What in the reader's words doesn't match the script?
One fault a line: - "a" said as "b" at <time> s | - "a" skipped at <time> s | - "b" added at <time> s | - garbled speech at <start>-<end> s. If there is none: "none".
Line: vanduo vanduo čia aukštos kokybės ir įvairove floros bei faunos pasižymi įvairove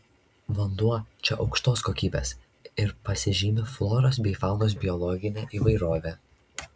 - "vanduo" skipped at 0.9 s
- "įvairove" said as "pasižymi" at 3.1 s
- "pasižymi" said as "biologine" at 4.8 s